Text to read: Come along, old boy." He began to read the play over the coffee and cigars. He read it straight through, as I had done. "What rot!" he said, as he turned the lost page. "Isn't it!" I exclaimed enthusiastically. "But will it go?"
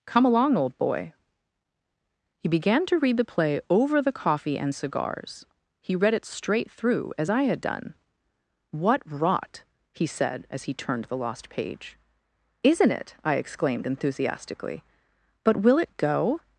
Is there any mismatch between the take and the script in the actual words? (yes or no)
no